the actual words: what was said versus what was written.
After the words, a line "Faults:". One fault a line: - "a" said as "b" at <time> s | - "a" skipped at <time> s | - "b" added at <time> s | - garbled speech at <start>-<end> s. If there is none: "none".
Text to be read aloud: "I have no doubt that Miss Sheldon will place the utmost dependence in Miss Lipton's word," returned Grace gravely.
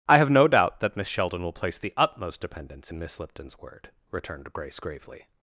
"I have no doubt that Miss Sheldon will place the utmost dependence in Miss Lipton's word," returned Grace gravely.
Faults:
none